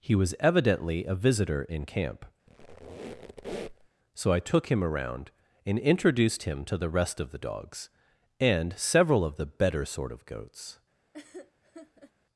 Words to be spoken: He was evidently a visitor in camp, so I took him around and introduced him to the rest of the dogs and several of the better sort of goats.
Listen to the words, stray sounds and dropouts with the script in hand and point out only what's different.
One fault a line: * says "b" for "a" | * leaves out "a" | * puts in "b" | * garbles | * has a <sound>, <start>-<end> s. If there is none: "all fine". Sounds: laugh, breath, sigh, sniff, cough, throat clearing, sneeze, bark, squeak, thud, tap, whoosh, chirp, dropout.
* has a squeak, 2.5-3.9 s
* has a laugh, 11.1-12.1 s